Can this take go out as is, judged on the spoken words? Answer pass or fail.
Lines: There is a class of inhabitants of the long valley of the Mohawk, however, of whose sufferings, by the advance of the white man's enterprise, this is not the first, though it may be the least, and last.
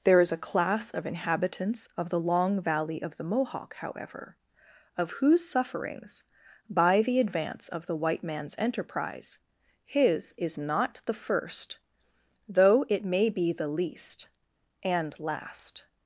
fail